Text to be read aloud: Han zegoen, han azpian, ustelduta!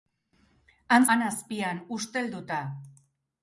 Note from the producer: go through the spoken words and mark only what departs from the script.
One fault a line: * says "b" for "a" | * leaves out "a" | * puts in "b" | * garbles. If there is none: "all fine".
* leaves out "zegoen"